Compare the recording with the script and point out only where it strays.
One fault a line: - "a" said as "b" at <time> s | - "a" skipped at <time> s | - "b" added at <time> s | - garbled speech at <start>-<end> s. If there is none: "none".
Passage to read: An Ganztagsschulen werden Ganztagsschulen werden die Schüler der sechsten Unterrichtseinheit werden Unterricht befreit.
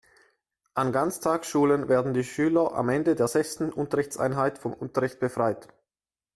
- "Ganztagsschulen werden die Schüler" said as "die Schüler am Ende" at 2.1 s
- "werden" said as "vom" at 4.6 s